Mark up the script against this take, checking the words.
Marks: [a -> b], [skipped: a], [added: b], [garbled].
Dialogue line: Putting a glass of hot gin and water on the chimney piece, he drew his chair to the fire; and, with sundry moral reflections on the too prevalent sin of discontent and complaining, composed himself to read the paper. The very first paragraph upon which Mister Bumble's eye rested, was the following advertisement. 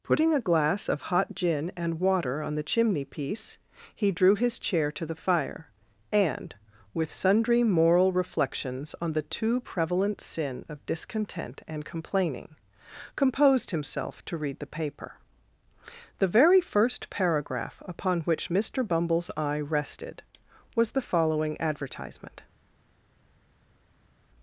Putting a glass of hot gin and water on the chimney piece, he drew his chair to the fire; and, with sundry moral reflections on the too prevalent sin of discontent and complaining, composed himself to read the paper. The very first paragraph upon which Mister Bumble's eye rested, was the following advertisement.